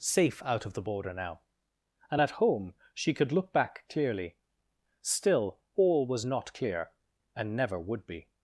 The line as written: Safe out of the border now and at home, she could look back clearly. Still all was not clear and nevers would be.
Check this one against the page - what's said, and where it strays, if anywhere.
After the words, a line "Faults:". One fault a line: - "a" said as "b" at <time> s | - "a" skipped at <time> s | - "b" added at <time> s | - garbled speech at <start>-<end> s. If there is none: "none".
Safe out of the border now and at home, she could look back clearly. Still all was not clear and never would be.
Faults:
- "nevers" said as "never" at 7.5 s